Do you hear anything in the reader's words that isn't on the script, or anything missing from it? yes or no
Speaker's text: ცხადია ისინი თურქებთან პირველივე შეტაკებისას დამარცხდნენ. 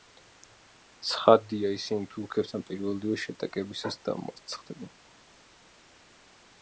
no